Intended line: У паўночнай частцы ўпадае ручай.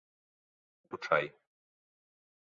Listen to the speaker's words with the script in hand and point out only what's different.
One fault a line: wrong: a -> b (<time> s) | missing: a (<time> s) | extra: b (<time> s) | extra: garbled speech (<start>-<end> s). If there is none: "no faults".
missing: паўночнай частцы ўпадае (0.9 s)